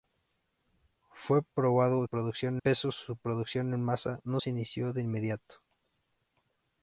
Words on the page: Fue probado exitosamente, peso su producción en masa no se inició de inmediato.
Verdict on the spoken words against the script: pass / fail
fail